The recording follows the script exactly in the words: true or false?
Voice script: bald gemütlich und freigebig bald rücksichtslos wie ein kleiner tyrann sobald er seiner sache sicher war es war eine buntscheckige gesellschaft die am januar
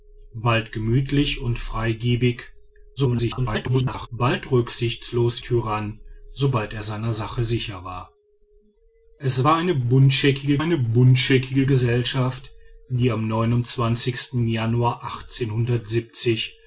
false